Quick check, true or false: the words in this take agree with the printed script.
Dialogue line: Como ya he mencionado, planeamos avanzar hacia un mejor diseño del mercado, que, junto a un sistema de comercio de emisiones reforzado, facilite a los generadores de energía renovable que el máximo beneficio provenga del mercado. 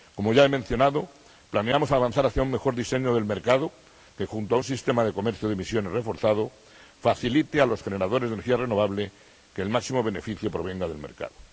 true